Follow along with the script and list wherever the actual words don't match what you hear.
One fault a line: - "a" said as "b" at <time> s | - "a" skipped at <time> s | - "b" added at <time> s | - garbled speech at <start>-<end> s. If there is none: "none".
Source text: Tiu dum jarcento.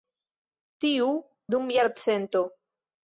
none